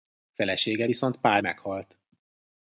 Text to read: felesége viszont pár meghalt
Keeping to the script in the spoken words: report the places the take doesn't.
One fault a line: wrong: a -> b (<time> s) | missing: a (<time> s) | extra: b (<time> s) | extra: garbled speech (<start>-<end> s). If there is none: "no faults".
no faults